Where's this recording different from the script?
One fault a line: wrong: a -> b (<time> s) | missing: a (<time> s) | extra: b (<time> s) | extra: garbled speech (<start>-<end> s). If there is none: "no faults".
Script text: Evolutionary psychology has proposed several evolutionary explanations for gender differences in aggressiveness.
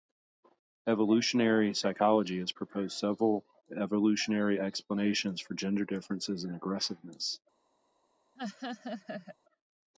no faults